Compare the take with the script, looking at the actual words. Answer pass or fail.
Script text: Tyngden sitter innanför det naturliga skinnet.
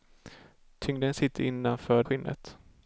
fail